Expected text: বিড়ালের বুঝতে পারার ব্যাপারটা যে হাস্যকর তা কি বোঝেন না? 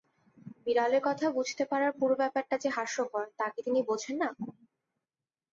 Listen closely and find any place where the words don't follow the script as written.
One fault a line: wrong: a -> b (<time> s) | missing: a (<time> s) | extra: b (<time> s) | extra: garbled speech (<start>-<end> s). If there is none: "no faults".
extra: কথা (1.1 s)
extra: পুরো (2.0 s)
extra: তিনি (3.6 s)